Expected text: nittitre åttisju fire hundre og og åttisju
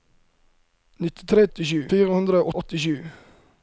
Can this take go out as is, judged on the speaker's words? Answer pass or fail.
pass